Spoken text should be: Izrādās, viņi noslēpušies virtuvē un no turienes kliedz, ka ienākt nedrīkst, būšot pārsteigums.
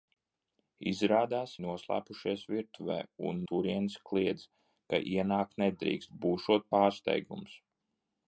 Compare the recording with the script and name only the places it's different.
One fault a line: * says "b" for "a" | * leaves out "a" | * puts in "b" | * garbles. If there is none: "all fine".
* leaves out "viņi"
* leaves out "no"